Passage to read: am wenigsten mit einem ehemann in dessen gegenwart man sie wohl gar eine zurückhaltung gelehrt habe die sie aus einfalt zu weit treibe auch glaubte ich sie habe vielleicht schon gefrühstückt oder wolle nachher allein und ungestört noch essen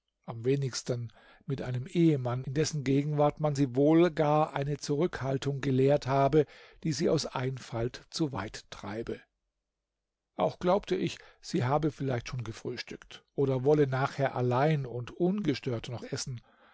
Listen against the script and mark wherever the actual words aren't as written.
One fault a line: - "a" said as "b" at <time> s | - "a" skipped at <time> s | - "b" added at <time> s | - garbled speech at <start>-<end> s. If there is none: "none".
none